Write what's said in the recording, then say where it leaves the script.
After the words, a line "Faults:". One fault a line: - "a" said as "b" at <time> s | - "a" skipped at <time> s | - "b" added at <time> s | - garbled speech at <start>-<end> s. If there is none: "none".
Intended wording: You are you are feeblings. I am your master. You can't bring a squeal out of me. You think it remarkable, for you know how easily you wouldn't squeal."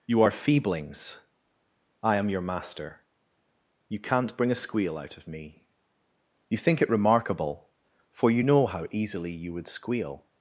You are feeblings. I am your master. You can't bring a squeal out of me. You think it remarkable, for you know how easily you would squeal."
Faults:
- "you are" skipped at 0.3 s
- "wouldn't" said as "would" at 9.5 s